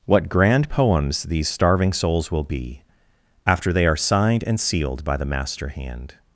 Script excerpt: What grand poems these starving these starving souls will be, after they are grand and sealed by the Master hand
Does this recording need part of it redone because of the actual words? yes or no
yes